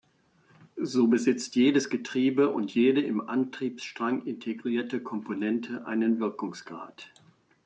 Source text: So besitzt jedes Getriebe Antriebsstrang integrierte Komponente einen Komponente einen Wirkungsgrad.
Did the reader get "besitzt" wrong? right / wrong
right